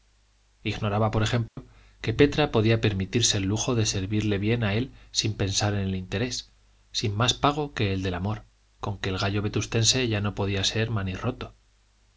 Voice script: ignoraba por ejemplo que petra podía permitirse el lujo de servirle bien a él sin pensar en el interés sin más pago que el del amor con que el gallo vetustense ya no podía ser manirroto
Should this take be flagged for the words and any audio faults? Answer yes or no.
yes